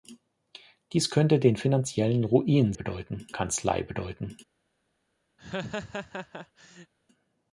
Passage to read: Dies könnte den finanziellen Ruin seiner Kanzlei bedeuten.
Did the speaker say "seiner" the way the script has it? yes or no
no